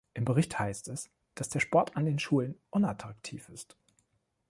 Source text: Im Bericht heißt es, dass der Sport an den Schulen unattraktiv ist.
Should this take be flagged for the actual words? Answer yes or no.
no